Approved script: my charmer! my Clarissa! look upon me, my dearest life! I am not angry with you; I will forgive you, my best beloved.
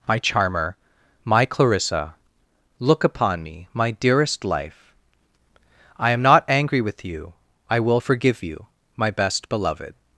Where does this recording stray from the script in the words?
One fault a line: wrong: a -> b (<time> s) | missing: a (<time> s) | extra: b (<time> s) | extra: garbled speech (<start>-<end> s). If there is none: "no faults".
no faults